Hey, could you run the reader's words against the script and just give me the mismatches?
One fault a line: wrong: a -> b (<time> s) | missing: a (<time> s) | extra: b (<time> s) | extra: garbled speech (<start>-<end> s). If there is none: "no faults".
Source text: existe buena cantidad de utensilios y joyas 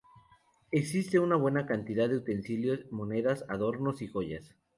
extra: una (1.2 s)
extra: monedas adornos (2.9 s)